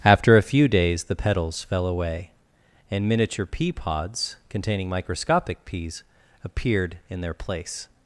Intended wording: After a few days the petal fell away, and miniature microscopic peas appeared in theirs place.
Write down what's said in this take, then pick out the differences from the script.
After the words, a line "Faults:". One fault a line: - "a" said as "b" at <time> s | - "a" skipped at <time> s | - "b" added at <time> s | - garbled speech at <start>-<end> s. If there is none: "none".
After a few days the petals fell away, and miniature pea pods, containing microscopic peas appeared in their place.
Faults:
- "petal" said as "petals" at 1.1 s
- "pea pods containing" added at 3.5 s
- "theirs" said as "their" at 7.2 s